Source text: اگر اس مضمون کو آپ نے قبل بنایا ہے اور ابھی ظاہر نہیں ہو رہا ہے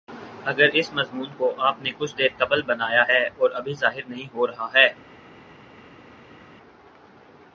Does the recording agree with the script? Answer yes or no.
no